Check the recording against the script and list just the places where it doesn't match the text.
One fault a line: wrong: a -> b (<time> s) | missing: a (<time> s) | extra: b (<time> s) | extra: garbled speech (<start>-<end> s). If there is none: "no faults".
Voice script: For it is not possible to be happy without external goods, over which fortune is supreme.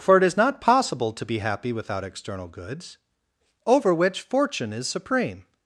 no faults